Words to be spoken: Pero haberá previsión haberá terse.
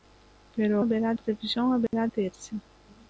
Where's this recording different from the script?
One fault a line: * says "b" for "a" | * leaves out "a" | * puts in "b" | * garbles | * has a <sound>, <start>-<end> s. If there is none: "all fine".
* has a dropout, 1.9-1.9 s